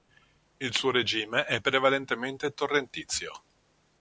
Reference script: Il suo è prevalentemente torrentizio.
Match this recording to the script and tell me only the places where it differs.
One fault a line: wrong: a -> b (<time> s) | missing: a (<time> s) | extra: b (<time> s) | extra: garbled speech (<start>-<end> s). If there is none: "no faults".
extra: regime (0.9 s)